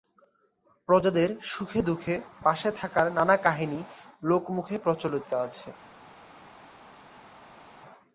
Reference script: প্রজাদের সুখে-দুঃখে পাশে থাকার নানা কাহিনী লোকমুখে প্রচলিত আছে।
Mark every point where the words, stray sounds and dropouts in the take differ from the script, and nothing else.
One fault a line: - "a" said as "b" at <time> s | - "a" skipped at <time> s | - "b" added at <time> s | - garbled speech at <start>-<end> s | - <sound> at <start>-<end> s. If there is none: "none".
none